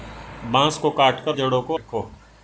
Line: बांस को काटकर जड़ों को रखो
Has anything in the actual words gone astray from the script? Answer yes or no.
no